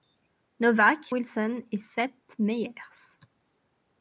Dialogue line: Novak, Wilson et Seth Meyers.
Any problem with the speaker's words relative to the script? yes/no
no